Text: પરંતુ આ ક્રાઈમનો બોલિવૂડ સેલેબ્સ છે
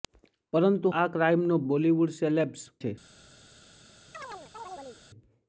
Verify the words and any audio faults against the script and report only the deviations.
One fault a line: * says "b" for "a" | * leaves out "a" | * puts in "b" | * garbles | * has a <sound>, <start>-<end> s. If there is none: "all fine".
* has a chirp, 4.1-5.0 s